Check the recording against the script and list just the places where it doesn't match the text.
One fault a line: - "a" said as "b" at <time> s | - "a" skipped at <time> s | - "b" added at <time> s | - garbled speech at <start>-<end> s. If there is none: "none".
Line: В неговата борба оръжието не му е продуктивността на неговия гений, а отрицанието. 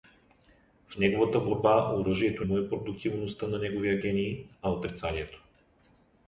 - "не" skipped at 2.5 s